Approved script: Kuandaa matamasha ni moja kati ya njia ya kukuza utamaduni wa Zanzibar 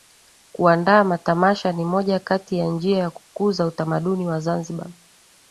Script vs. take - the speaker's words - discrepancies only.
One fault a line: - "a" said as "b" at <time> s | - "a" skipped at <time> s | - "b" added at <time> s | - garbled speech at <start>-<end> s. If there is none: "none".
none